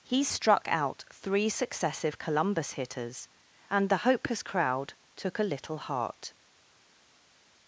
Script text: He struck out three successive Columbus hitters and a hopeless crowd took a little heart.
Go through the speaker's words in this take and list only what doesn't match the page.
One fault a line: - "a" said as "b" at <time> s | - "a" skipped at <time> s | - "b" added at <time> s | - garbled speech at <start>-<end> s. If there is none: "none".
- "a" said as "the" at 3.9 s